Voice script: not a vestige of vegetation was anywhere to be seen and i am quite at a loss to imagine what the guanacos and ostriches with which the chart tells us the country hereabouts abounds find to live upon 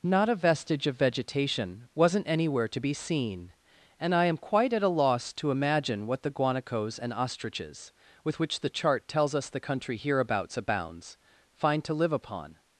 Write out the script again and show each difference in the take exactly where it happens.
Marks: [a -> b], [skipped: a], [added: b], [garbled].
not a vestige of vegetation [was -> wasn't] anywhere to be seen and i am quite at a loss to imagine what the guanacos and ostriches with which the chart tells us the country hereabouts abounds find to live upon